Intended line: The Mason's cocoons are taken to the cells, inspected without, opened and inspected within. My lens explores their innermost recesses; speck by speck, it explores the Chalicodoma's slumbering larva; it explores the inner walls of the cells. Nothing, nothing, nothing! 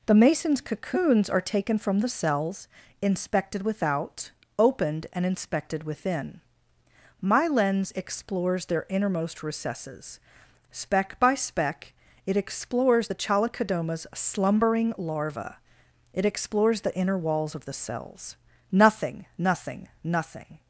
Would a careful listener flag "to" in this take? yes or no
yes